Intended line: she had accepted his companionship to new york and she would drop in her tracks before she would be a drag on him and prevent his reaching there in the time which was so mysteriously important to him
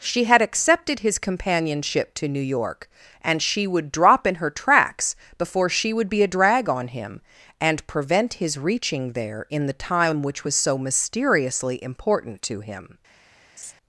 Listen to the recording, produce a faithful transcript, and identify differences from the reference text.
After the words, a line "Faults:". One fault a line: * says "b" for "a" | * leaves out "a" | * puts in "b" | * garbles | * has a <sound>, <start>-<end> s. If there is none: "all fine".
she had accepted his companionship to new york and she would drop in her tracks before she would be a drag on him and prevent his reaching there in the time which was so mysteriously important to him
Faults:
* has a laugh, 13.6-13.7 s